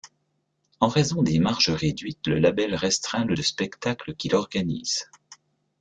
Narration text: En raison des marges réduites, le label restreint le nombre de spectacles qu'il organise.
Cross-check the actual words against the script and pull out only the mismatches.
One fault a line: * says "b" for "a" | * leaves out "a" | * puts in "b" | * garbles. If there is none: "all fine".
* leaves out "nombre"